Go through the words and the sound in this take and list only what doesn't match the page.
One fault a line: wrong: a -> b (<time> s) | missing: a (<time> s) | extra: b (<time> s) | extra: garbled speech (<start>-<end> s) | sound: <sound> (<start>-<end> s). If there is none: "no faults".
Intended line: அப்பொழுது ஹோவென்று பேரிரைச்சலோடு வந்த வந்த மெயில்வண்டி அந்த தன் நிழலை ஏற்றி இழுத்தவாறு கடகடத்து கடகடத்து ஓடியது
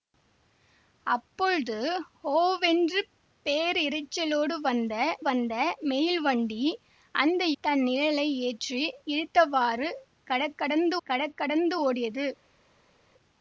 no faults